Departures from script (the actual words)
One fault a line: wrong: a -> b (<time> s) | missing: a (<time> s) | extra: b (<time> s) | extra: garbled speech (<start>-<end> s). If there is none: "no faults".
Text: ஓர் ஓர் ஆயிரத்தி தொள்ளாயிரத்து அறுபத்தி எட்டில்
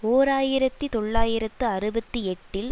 missing: ஓர் (0.3 s)